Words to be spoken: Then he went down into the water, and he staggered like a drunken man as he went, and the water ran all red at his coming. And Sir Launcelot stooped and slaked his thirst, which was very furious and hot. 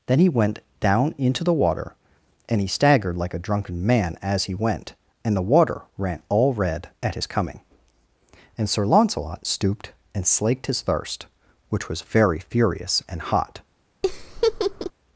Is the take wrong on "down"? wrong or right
right